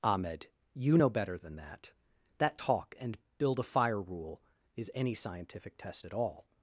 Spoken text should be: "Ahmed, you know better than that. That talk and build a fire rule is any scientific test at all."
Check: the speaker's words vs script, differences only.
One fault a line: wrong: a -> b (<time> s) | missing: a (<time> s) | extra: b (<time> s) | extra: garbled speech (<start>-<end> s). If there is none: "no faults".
no faults